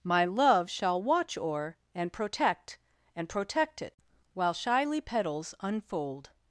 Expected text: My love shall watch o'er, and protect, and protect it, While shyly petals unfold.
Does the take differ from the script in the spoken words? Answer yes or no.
no